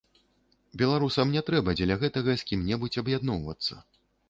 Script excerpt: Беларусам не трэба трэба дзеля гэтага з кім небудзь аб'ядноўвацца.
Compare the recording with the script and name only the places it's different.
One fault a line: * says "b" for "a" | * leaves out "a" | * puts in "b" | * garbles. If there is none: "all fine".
* leaves out "трэба"